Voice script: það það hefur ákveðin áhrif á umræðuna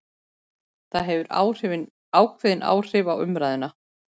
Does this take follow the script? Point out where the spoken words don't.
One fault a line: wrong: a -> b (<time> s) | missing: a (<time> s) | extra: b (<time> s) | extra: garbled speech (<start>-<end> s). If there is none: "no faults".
missing: það (1.1 s)